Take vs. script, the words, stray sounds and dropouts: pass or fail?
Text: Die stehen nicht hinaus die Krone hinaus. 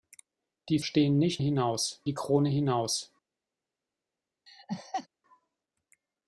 fail